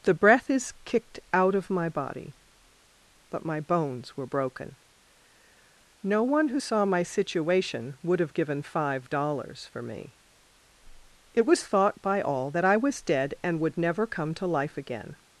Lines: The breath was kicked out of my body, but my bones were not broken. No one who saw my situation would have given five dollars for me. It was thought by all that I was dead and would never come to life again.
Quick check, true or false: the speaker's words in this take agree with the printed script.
false